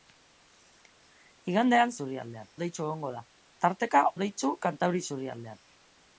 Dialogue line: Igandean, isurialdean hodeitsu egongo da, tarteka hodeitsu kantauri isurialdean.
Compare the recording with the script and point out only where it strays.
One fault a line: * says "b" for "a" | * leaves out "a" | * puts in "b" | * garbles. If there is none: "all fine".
all fine